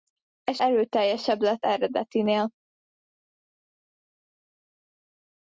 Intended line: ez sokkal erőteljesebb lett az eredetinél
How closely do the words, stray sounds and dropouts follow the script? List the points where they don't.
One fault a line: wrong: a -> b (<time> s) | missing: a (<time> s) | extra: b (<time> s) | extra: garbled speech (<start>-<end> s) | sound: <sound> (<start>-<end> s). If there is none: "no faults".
missing: sokkal (0.6 s)
missing: az (1.7 s)